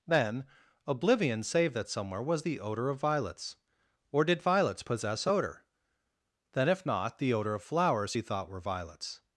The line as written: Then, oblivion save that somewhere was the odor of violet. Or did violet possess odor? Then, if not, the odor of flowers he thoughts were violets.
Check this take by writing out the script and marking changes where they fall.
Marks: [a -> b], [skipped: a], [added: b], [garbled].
Then, oblivion save that somewhere was the odor of [violet. -> violets] Or did [violet -> violets] possess odor? Then, if not, the odor of flowers he [thoughts -> thought] were violets.